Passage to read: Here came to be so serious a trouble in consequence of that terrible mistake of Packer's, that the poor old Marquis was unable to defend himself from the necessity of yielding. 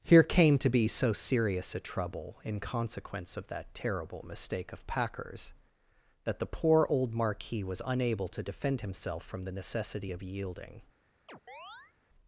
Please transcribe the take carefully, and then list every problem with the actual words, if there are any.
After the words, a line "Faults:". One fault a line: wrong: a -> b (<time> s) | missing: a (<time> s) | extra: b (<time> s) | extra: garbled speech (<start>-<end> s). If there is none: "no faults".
Here came to be so serious a trouble in consequence of that terrible mistake of Packer's, that the poor old Marquis was unable to defend himself from the necessity of yielding.
Faults:
no faults